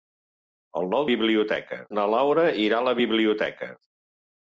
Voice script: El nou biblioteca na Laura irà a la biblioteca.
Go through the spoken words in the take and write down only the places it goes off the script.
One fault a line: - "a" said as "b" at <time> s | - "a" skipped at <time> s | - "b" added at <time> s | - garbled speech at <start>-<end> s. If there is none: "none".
none